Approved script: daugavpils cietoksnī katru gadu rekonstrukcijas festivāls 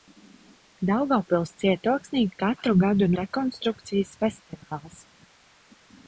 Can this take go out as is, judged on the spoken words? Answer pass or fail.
pass